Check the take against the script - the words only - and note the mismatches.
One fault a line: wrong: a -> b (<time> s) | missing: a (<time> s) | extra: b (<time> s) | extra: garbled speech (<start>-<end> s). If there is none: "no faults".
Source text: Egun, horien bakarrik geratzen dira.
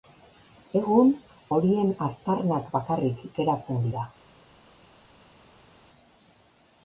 extra: aztarnak (2.1 s)